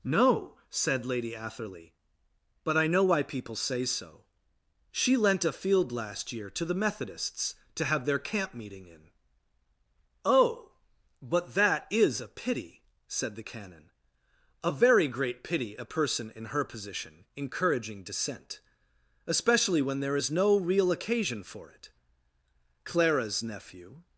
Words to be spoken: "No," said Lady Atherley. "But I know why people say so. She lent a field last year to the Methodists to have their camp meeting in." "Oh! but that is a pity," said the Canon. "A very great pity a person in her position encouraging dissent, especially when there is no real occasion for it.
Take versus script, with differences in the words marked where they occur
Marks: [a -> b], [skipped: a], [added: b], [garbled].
"No," said Lady Atherley. "But I know why people say so. She lent a field last year to the Methodists to have their camp meeting in." "Oh! but that is a pity," said the Canon. "A very great pity a person in her position encouraging dissent, especially when there is no real occasion for it. [added: Clara's nephew]